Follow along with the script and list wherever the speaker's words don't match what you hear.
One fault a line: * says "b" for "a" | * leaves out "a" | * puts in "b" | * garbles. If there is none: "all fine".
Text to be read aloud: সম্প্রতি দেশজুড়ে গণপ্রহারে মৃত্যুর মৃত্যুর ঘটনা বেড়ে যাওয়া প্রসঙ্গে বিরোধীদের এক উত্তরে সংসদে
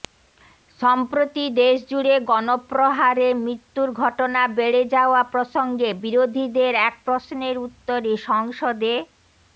* leaves out "মৃত্যুর"
* puts in "প্রশ্নের"